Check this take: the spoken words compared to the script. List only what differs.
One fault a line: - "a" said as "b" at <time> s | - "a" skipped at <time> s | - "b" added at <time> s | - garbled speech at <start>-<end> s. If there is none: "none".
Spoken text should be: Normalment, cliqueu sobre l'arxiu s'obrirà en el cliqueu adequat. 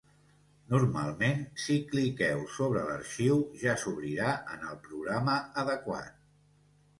- "si" added at 1.6 s
- "ja" added at 3.6 s
- "cliqueu" said as "programa" at 4.9 s